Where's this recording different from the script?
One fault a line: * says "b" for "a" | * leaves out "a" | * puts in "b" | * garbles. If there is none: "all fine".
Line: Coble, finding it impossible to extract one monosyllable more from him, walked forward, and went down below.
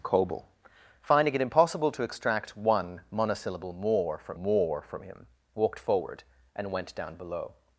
* puts in "more from"